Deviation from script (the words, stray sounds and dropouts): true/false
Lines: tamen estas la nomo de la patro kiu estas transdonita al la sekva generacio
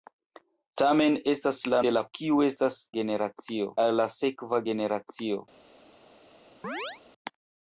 true